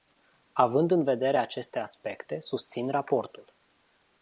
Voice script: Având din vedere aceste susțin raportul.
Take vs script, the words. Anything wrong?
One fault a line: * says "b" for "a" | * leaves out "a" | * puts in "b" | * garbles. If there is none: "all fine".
* says "în" for "din"
* puts in "aspecte"